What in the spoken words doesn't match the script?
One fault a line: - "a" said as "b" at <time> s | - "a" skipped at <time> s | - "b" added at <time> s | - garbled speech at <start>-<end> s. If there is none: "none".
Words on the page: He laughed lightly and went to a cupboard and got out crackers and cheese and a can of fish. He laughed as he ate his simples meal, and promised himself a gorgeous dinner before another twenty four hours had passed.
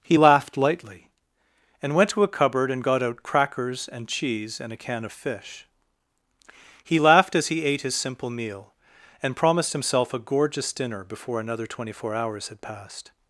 - "simples" said as "simple" at 8.0 s